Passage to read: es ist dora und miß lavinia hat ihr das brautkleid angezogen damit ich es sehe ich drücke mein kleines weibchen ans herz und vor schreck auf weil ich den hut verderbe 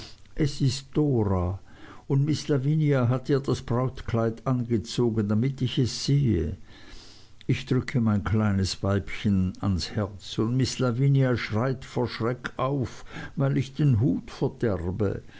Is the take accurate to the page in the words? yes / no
no